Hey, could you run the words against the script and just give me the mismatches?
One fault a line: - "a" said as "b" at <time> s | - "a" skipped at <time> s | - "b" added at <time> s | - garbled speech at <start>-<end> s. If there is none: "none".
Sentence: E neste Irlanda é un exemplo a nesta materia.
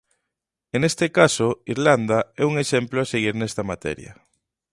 - "caso" added at 1.2 s
- "seguir" added at 3.1 s